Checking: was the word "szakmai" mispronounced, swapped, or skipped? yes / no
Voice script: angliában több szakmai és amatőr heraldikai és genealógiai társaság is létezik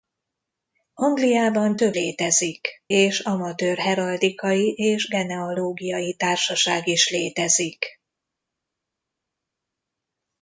yes